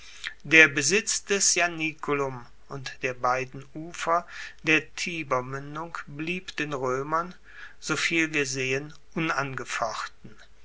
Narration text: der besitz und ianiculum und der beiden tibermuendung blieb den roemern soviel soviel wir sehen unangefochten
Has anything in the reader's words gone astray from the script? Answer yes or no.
yes